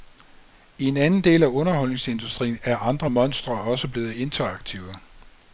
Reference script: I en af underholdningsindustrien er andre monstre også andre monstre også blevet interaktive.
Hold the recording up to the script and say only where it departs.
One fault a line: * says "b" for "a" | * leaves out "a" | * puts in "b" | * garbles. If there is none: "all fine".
* puts in "anden del"
* leaves out "andre monstre også"